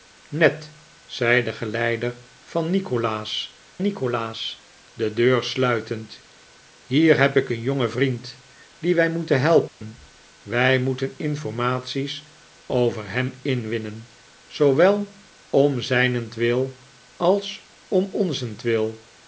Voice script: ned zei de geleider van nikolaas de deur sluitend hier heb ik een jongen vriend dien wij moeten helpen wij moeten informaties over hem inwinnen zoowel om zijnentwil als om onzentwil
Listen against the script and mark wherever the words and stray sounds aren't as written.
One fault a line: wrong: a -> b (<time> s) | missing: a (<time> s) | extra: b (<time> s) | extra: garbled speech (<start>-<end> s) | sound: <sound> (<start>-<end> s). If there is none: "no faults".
extra: nikolaas (3.8 s)
sound: dropout (9.7-9.8 s)